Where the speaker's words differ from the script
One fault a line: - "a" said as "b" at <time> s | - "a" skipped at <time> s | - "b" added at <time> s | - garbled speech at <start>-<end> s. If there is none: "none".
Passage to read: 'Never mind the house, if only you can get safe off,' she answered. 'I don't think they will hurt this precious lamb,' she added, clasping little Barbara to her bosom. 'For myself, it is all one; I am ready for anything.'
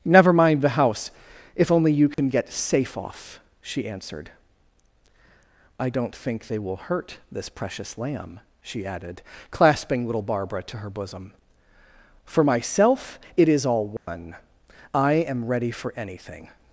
none